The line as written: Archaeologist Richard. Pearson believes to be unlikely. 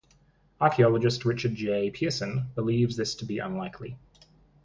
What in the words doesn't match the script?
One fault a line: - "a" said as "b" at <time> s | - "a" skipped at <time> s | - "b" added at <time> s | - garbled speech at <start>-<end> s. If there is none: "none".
- "J" added at 1.5 s
- "this" added at 2.9 s